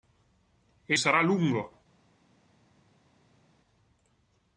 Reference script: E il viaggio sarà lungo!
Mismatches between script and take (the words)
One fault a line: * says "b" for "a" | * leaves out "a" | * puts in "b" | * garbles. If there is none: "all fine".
* leaves out "il viaggio"